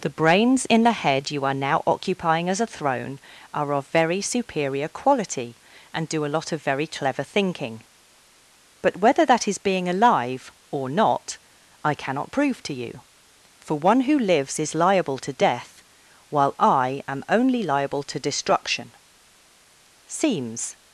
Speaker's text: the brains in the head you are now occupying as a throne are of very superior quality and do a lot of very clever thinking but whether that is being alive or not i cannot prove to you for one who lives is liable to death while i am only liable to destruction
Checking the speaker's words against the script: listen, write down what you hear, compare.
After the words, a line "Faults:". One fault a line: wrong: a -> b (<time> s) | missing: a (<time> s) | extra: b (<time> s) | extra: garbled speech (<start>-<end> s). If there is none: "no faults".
the brains in the head you are now occupying as a throne are of very superior quality and do a lot of very clever thinking but whether that is being alive or not i cannot prove to you for one who lives is liable to death while i am only liable to destruction seems
Faults:
extra: seems (20.1 s)